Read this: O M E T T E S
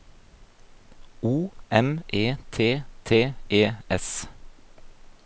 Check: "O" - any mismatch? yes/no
no